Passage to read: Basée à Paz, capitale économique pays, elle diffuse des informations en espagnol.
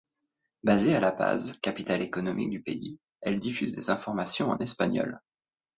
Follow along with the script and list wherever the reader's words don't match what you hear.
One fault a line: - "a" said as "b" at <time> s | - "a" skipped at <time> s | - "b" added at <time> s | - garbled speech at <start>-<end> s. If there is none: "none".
- "La" added at 1.0 s
- "du" added at 2.5 s